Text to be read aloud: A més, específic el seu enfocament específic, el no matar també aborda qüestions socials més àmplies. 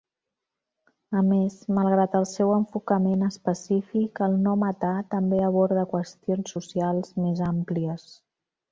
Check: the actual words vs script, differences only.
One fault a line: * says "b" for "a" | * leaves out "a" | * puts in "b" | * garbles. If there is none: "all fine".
* says "malgrat" for "específic"